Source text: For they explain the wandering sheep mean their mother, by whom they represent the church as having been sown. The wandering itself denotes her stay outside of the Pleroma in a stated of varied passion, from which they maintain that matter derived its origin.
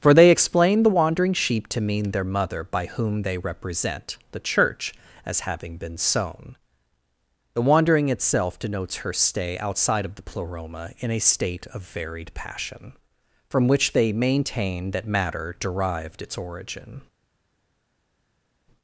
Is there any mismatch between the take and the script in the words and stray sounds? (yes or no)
yes